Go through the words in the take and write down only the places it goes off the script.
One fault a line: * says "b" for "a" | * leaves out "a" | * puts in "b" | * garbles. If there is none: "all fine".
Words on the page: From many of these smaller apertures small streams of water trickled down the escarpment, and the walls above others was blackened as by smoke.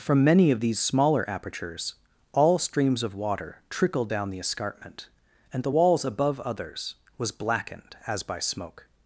* says "all" for "small"